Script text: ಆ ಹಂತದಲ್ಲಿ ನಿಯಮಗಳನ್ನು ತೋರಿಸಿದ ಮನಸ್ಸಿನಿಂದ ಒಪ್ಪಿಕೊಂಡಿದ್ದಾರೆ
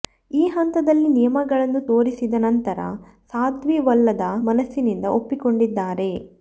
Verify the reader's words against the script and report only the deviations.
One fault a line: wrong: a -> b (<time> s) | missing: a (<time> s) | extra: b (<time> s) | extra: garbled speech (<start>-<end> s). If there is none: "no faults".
wrong: ಆ -> ಈ (0.3 s)
extra: ನಂತರ ಸಾಧ್ವಿ ಒಲ್ಲದ (2.4 s)